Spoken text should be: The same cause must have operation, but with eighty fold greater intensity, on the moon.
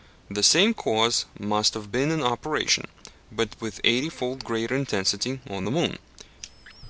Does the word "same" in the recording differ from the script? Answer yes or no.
no